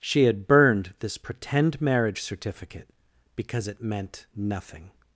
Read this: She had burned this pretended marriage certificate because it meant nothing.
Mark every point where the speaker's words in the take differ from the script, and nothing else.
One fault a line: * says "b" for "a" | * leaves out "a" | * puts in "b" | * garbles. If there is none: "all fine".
* says "pretend" for "pretended"